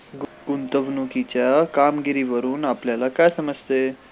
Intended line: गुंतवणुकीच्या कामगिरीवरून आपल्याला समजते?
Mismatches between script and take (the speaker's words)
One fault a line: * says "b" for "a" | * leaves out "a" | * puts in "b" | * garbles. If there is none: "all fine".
* puts in "काय"